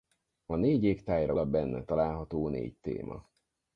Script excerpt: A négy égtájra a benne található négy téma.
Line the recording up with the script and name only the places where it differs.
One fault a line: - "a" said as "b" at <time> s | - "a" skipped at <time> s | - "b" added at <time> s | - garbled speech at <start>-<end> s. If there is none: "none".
none